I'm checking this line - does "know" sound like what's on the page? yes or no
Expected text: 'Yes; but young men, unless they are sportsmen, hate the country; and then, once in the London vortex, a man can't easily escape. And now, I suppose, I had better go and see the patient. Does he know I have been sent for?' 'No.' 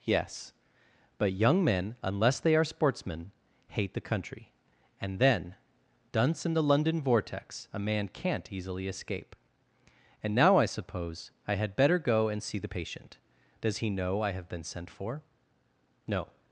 yes